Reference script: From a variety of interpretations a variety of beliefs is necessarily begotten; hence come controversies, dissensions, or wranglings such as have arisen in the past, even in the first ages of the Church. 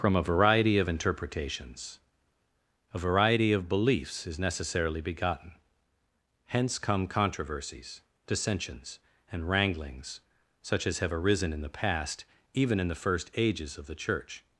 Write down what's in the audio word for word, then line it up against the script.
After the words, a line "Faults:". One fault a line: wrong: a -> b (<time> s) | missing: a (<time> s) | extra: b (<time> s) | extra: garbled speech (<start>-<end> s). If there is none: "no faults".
From a variety of interpretations a variety of beliefs is necessarily begotten; hence come controversies, dissensions, and wranglings such as have arisen in the past, even in the first ages of the Church.
Faults:
wrong: or -> and (9.3 s)